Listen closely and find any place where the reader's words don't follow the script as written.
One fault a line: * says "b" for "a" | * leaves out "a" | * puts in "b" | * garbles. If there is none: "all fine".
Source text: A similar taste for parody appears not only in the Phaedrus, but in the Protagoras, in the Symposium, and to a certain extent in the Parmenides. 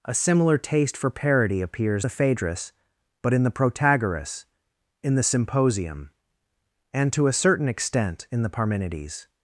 * leaves out "not only in"